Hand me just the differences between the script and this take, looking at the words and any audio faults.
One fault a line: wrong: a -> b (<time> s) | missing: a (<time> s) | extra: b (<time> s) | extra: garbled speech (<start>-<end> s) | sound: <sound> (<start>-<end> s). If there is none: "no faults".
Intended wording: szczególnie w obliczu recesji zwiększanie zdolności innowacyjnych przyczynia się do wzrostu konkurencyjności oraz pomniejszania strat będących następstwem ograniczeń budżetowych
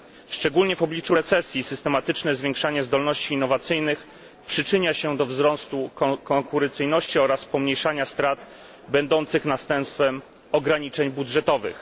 extra: systematyczne (1.6 s)